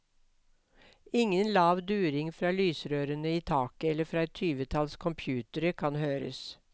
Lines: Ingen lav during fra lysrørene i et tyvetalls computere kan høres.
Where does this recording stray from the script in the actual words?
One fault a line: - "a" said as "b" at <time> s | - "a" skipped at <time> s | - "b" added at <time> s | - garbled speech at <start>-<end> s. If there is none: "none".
- "taket eller fra" added at 3.4 s